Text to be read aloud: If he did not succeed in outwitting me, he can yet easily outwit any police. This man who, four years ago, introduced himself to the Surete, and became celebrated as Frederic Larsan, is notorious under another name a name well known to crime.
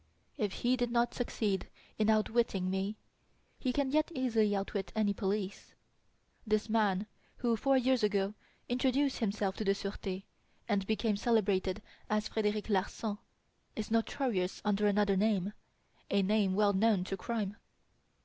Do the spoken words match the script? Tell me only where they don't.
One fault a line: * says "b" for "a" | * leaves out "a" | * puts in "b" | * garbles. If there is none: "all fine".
all fine